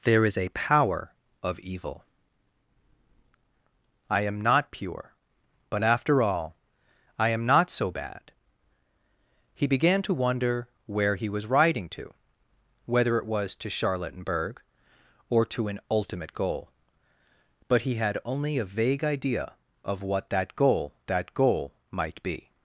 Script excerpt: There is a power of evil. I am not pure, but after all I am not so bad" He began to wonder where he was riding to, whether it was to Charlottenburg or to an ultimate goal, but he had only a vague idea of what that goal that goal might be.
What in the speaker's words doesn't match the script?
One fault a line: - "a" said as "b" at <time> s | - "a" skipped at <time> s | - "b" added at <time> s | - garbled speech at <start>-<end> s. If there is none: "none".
none